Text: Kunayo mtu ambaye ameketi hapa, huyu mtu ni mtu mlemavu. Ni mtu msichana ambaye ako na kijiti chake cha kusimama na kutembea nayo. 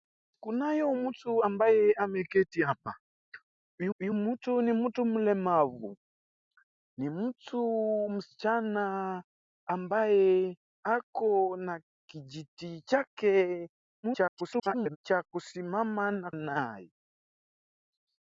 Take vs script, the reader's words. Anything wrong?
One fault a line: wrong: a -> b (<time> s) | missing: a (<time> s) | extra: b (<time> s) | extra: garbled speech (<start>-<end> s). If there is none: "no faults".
extra: huyu (4.0 s)
extra: garbled speech (14.0-15.0 s)
missing: kutembea (16.3 s)